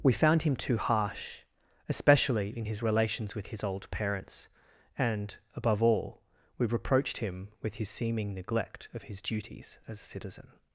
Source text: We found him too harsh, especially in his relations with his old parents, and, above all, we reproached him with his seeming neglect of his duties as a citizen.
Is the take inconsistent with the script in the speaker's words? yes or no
no